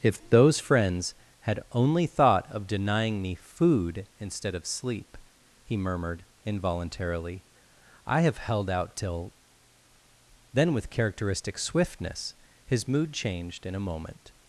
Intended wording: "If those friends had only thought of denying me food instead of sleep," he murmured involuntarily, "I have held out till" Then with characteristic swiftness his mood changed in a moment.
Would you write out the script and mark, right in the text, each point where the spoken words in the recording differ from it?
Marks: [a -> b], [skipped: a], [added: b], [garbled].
"If those friends had only thought of denying me food instead of sleep," he murmured involuntarily, "I have held out till" Then with characteristic swiftness his mood changed in a moment.